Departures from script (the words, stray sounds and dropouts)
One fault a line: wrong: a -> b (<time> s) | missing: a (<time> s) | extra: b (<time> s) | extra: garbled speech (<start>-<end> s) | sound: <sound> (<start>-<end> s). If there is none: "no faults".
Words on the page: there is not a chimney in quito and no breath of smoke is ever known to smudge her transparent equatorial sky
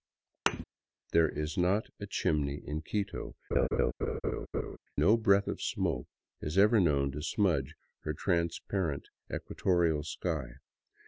sound: thud (0.5-0.6 s)
missing: and (3.4 s)
sound: laugh (3.5-4.8 s)